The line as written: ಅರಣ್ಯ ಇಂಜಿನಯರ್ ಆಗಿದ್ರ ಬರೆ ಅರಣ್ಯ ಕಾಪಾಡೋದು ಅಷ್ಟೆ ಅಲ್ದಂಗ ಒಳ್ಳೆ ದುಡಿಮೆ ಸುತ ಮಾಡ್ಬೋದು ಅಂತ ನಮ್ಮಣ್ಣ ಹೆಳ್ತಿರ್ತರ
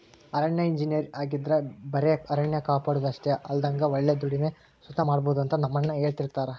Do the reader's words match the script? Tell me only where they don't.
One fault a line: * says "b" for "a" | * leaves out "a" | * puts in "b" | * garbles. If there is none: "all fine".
all fine